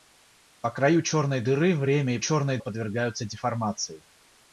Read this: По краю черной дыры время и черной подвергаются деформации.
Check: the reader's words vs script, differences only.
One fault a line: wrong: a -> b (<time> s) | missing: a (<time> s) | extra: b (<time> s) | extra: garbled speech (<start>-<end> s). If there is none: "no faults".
no faults